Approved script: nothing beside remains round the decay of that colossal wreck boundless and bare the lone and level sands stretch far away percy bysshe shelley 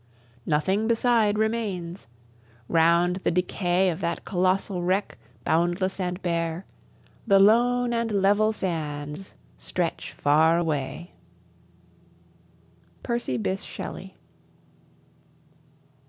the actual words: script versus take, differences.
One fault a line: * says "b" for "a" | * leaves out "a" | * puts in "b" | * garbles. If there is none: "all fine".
all fine